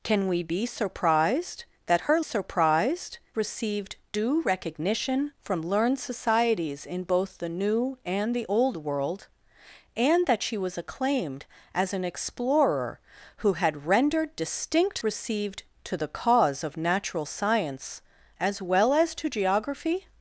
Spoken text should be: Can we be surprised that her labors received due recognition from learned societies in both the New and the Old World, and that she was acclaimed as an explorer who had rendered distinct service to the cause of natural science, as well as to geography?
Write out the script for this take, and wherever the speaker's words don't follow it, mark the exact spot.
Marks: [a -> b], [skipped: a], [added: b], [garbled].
Can we be surprised that her [labors -> surprised] received due recognition from learned societies in both the New and the Old World, and that she was acclaimed as an explorer who had rendered distinct [service -> received] to the cause of natural science, as well as to geography?